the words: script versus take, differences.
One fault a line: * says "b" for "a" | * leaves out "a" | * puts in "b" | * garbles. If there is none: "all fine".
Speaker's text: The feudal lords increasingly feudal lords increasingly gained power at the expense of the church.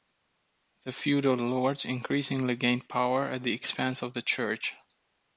* leaves out "feudal lords increasingly"